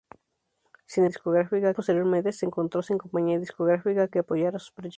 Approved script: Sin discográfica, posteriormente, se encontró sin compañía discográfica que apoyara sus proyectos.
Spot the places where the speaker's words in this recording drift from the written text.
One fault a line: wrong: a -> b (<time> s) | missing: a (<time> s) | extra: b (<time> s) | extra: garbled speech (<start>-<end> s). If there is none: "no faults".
no faults